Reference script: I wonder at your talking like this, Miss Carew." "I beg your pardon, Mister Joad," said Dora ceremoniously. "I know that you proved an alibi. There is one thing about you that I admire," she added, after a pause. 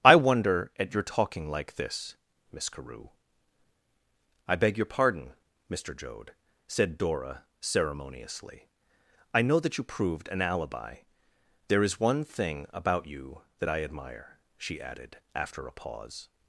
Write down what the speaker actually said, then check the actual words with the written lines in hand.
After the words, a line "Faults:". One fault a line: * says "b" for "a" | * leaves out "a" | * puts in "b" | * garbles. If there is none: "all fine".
I wonder at your talking like this, Miss Carew." "I beg your pardon, Mister Joad," said Dora ceremoniously. "I know that you proved an alibi. There is one thing about you that I admire," she added, after a pause.
Faults:
all fine